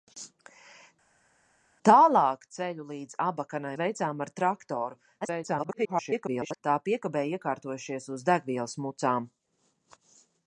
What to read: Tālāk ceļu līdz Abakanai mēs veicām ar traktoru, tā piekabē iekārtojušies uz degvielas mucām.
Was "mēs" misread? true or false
true